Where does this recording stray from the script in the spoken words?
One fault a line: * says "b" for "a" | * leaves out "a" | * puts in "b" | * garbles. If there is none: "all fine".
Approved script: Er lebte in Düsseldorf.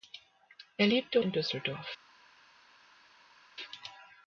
all fine